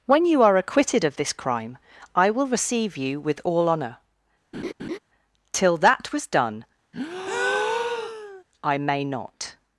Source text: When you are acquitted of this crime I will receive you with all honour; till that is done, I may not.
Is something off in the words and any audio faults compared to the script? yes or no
yes